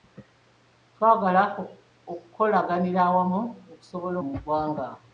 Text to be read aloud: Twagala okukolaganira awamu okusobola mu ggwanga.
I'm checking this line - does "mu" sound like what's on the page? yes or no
yes